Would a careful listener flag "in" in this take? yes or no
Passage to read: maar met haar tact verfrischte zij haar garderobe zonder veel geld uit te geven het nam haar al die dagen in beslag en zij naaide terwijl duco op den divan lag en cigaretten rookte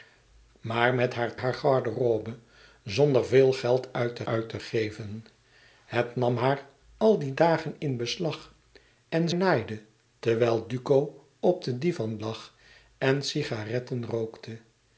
no